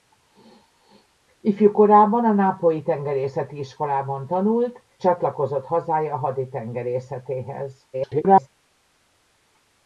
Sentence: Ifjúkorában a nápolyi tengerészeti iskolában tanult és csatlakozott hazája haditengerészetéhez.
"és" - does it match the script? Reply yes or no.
no